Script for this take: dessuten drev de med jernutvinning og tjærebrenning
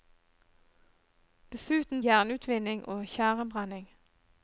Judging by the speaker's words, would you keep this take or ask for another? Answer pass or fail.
fail